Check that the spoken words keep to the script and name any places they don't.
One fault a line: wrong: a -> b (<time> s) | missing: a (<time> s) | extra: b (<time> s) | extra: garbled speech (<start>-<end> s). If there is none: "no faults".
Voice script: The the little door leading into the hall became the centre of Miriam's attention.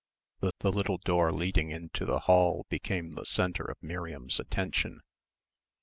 no faults